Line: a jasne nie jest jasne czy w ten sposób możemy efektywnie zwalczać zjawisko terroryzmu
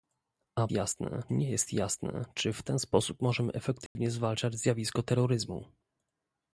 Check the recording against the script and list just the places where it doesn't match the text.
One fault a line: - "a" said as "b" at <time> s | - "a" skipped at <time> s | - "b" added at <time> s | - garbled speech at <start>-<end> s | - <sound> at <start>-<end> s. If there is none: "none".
- dropout at 3.9-4.0 s